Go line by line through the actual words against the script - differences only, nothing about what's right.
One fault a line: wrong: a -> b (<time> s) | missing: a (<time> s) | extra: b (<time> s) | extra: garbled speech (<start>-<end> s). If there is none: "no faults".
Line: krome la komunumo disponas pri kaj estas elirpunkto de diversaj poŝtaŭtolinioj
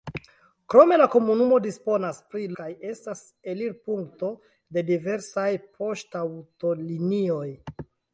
no faults